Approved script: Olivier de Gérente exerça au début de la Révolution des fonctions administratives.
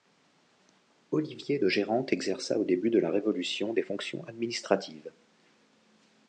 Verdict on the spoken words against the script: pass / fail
pass